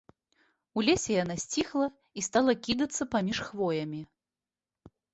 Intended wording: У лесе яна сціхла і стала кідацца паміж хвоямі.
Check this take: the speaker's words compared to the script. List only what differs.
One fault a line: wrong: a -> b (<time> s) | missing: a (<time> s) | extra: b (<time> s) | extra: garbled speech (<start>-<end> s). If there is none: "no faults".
no faults